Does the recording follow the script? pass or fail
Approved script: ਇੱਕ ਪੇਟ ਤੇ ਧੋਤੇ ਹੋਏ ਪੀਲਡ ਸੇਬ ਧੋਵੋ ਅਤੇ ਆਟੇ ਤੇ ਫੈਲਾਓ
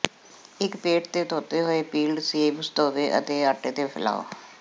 pass